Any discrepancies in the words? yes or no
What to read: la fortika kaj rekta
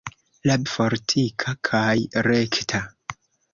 no